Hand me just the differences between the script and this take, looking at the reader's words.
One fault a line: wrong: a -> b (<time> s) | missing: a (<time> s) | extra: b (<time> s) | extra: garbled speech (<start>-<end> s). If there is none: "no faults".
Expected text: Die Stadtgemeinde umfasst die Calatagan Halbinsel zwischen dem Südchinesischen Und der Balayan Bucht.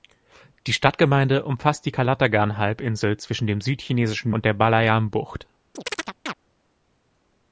no faults